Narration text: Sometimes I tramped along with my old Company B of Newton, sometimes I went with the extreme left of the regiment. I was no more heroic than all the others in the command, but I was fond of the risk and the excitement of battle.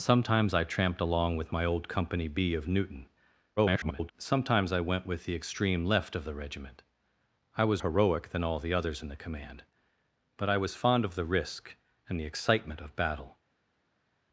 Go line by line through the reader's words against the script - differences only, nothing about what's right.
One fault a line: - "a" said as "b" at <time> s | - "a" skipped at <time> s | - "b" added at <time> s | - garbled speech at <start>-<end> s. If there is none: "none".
- garbled speech at 3.6-4.1 s
- "no more" skipped at 7.8 s